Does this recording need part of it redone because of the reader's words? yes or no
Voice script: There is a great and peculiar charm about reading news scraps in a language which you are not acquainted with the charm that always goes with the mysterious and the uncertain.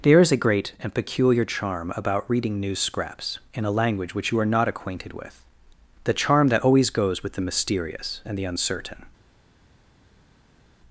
no